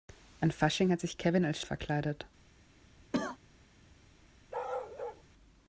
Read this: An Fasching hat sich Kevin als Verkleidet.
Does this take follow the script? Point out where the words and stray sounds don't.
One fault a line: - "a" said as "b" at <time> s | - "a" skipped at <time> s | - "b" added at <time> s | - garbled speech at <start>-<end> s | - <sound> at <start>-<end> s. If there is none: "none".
- cough at 3.1-3.4 s
- bark at 4.5-5.2 s